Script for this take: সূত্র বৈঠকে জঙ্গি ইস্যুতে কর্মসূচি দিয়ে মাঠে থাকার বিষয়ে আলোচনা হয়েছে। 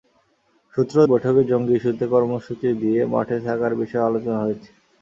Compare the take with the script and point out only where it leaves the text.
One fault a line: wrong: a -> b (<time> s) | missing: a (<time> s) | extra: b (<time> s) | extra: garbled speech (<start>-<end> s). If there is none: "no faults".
no faults